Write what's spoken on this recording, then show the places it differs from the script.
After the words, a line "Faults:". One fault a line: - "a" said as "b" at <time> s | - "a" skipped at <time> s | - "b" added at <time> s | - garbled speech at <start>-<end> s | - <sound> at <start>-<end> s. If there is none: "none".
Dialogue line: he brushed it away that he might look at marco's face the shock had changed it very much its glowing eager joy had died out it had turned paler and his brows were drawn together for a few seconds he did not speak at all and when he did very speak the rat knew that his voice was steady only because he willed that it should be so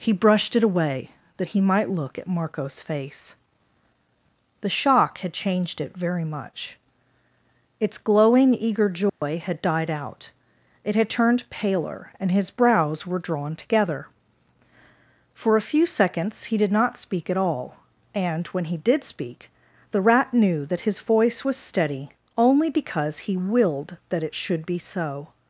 he brushed it away that he might look at marco's face the shock had changed it very much its glowing eager joy had died out it had turned paler and his brows were drawn together for a few seconds he did not speak at all and when he did speak the rat knew that his voice was steady only because he willed that it should be so
Faults:
- dropout at 9.1-9.2 s
- "very" skipped at 19.0 s